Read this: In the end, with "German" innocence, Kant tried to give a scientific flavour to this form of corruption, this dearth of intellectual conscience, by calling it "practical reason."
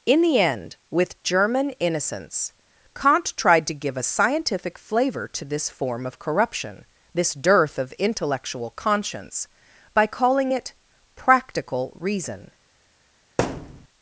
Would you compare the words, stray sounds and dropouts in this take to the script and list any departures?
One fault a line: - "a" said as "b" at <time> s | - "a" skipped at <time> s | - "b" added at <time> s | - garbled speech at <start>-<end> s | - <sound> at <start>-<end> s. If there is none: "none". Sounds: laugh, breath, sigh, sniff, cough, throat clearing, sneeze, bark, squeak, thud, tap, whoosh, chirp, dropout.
- thud at 13.4-13.9 s